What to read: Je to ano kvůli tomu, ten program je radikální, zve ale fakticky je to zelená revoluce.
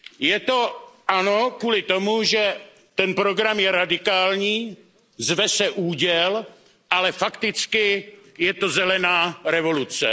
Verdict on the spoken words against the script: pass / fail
fail